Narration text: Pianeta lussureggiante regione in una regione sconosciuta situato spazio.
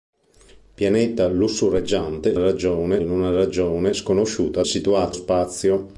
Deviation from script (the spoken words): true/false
false